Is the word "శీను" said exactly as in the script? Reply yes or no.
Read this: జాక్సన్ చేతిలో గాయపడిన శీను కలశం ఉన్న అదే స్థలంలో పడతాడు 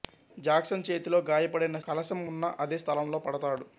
no